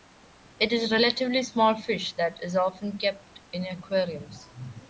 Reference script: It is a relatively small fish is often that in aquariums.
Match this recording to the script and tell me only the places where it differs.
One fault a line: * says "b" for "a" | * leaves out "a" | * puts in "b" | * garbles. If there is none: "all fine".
* puts in "that"
* says "kept" for "that"